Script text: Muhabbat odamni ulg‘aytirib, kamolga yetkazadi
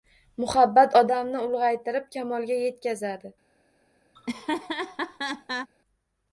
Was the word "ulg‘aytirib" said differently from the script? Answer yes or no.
no